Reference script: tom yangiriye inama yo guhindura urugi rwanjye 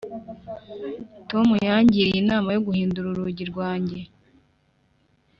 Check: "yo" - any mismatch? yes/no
no